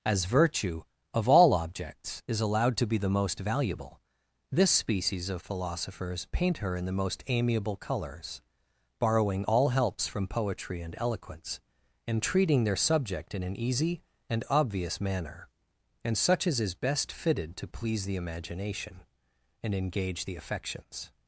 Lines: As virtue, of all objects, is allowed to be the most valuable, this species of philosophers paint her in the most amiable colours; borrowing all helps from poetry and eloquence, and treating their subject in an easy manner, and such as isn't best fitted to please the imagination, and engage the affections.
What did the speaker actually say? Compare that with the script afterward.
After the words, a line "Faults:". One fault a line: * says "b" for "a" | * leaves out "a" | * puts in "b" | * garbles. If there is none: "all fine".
As virtue, of all objects, is allowed to be the most valuable, this species of philosophers paint her in the most amiable colours; borrowing all helps from poetry and eloquence, and treating their subject in an easy and obvious manner, and such as is best fitted to please the imagination, and engage the affections.
Faults:
* puts in "and obvious"
* says "is" for "isn't"